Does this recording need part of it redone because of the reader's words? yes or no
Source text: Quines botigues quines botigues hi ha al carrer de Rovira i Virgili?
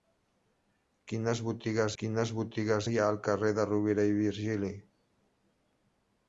no